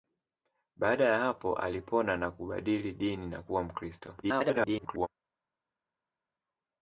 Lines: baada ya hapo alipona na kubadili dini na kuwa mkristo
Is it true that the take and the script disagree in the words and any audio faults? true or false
true